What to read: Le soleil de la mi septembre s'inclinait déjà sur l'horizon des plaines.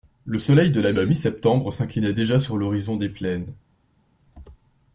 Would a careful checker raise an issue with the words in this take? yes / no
yes